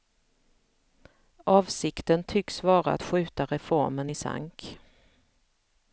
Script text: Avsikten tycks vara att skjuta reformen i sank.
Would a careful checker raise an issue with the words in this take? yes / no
no